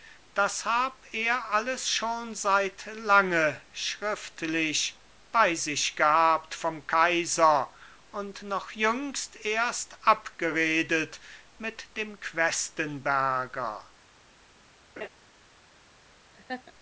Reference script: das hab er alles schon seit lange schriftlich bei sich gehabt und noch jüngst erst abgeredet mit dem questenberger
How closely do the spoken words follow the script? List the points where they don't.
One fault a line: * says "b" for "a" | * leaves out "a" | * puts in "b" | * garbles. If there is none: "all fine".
* puts in "vom kaiser"